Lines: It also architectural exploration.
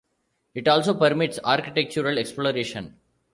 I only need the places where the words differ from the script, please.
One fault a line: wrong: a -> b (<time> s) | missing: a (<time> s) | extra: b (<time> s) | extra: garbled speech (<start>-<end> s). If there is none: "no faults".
extra: permits (0.9 s)